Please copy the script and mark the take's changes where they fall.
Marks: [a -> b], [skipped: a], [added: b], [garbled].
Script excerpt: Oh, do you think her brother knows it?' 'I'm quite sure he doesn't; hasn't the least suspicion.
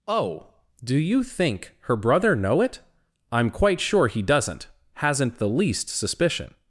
Oh, do you think her brother [knows -> know] it?' 'I'm quite sure he doesn't; hasn't the least suspicion.